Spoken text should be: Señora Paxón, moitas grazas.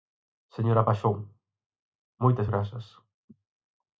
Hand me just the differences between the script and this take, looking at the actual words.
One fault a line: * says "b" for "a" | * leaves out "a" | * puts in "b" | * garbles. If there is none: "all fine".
all fine